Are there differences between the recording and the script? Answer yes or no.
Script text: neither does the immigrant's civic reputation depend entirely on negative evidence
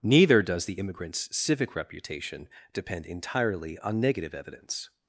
no